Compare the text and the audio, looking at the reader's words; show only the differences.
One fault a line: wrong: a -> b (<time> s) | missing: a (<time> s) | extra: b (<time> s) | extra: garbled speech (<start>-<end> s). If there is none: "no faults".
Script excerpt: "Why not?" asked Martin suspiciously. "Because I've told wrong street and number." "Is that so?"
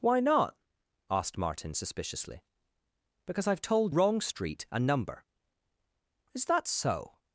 no faults